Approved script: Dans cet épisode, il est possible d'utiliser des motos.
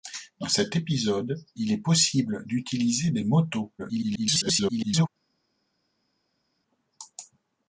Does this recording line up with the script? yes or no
no